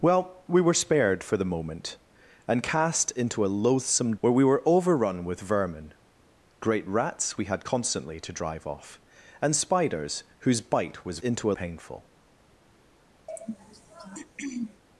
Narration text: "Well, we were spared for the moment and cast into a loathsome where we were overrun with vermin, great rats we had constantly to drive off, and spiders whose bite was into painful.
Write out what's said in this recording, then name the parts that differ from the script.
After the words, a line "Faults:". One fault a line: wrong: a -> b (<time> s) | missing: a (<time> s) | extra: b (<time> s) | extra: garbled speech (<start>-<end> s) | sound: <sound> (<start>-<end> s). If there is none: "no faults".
"Well, we were spared for the moment and cast into a loathsome where we were overrun with vermin, great rats we had constantly to drive off, and spiders whose bite was into painful.
Faults:
sound: throat clearing (13.3-14.8 s)